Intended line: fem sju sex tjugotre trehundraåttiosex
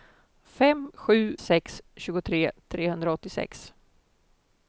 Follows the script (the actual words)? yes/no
yes